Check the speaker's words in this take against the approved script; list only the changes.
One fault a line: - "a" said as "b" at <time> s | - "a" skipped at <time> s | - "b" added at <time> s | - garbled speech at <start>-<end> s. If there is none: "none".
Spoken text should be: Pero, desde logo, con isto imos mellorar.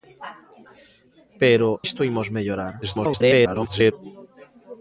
- "desde logo con" skipped at 1.7 s
- garbled speech at 2.8-3.9 s